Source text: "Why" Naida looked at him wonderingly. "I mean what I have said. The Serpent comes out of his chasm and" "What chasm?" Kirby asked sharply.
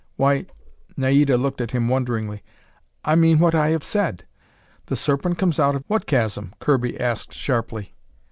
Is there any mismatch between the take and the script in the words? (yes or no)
yes